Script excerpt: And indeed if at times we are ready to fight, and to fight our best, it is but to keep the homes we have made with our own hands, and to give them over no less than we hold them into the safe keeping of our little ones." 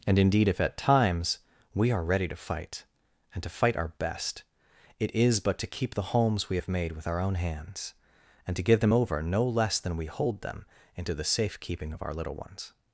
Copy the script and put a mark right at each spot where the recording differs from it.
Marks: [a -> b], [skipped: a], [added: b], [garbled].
And indeed if at times we are ready to fight, and to fight our best, it is but to keep the homes we have made with our own hands, and to give them over no less than we hold them into the safe keeping of our little ones."